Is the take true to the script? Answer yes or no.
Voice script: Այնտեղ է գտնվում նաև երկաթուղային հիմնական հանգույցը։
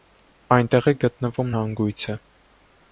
no